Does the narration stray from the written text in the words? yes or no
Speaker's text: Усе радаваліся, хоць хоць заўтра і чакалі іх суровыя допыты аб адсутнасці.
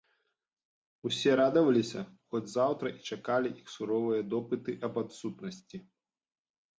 yes